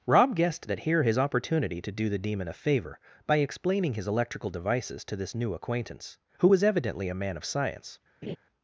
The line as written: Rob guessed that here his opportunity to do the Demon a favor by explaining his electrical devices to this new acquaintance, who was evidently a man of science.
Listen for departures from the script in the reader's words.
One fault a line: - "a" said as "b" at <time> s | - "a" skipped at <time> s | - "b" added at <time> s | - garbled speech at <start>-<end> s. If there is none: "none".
none